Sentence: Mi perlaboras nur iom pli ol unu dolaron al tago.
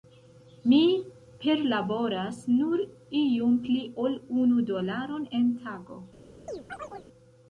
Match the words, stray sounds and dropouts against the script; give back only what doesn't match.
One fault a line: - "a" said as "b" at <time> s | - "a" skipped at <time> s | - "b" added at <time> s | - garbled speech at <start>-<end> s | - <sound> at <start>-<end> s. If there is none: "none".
- "al" said as "en" at 5.4 s
- chirp at 6.5-7.1 s